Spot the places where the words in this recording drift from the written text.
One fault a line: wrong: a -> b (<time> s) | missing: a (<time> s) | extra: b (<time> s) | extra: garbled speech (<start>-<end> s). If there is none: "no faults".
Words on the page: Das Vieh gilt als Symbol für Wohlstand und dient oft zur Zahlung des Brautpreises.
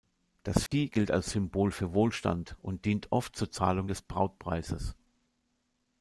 no faults